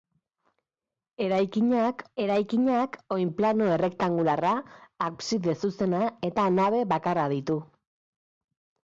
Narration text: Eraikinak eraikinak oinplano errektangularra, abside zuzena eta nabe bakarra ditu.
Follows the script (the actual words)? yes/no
yes